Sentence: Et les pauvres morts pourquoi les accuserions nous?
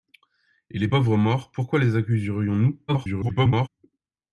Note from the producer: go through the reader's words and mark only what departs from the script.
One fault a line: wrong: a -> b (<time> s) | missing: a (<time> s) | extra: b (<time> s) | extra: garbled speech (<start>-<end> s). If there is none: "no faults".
extra: garbled speech (2.9-3.7 s)